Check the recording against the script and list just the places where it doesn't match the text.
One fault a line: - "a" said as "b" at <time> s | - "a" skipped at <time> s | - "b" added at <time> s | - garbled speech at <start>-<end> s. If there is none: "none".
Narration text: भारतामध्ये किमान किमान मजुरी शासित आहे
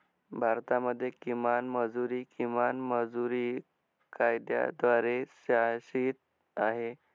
- "मजुरी" added at 1.7 s
- "कायद्याद्वारे" added at 4.1 s